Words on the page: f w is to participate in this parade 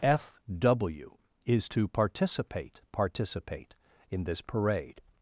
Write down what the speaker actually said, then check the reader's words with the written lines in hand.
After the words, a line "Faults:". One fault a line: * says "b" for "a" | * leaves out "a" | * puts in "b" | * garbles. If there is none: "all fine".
f w is to participate participate in this parade
Faults:
* puts in "participate"